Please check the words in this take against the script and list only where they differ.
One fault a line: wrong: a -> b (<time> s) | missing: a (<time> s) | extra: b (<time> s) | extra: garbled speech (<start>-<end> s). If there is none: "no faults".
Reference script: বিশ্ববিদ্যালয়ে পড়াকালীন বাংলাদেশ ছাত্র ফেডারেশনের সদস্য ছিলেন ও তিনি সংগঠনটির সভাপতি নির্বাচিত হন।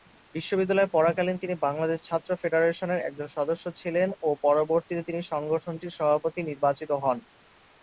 extra: তিনি (1.4 s)
extra: একজন (3.0 s)
extra: পরবর্তীতে (4.4 s)